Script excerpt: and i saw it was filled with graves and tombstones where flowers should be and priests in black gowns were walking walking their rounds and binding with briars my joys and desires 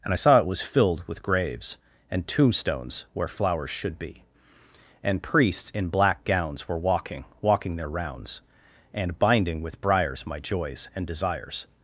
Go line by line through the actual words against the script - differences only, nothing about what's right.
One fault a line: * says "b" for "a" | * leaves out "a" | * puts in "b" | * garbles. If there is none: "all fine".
all fine